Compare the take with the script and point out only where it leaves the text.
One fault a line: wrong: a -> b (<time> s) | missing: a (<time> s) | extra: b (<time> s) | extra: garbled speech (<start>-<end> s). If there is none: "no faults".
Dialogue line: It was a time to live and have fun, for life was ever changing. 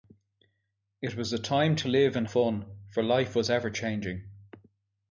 missing: have (2.3 s)